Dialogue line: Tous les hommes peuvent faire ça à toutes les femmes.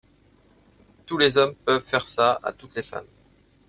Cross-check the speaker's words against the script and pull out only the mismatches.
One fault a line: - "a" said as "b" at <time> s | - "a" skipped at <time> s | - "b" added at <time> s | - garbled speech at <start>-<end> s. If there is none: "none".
none